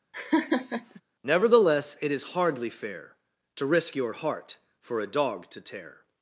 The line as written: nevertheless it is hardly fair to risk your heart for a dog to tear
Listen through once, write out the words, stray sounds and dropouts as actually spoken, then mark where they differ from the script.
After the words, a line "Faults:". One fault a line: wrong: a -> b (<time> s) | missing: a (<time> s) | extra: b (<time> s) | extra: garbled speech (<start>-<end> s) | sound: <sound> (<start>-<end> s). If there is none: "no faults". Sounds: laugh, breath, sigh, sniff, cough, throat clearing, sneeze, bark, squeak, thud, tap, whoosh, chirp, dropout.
nevertheless it is hardly fair to risk your heart for a dog to tear
Faults:
sound: laugh (0.1-1.0 s)